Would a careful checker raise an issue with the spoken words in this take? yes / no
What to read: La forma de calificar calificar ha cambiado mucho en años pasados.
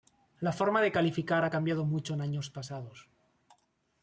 yes